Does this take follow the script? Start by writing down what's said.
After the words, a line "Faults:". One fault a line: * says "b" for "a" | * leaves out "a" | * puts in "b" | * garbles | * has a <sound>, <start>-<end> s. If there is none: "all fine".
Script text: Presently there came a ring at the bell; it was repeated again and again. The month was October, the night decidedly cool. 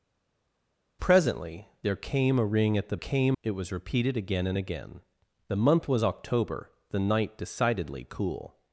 Presently there came a ring at the came; it was repeated again and again. The month was October, the night decidedly cool.
Faults:
* says "came" for "bell"